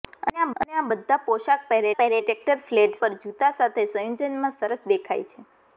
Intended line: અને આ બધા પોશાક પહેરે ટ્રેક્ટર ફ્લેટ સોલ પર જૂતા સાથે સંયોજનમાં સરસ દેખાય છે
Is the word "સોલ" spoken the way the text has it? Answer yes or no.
no